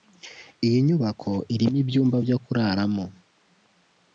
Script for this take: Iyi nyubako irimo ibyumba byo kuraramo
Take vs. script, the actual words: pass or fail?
pass